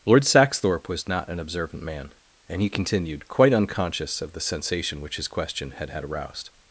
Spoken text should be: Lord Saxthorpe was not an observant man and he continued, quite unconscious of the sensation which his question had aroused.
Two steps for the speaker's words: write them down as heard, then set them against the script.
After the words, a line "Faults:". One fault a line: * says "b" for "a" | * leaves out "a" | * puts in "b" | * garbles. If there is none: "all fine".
Lord Saxthorpe was not an observant man and he continued, quite unconscious of the sensation which his question had had aroused.
Faults:
* puts in "had"